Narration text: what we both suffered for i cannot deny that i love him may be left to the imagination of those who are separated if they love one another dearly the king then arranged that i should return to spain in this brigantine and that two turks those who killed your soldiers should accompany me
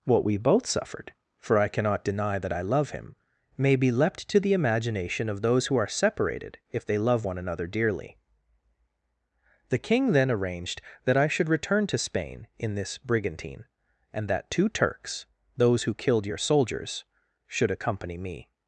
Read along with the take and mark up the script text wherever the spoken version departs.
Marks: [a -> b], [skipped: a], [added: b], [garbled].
what we both suffered for i cannot deny that i love him may be [left -> leapt] to the imagination of those who are separated if they love one another dearly the king then arranged that i should return to spain in this brigantine and that two turks those who killed your soldiers should accompany me